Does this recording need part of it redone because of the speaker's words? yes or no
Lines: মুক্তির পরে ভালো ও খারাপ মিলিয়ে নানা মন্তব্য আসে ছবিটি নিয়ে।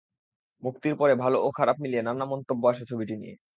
no